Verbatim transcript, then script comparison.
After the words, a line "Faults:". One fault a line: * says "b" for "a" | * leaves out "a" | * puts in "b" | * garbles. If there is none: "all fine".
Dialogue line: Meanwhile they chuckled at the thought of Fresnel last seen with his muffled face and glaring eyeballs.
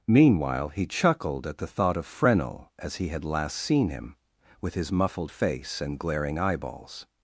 Meanwhile he chuckled at the thought of Fresnel as he had last seen him, with his muffled face and glaring eyeballs.
Faults:
* says "he" for "they"
* puts in "as he had"
* puts in "him"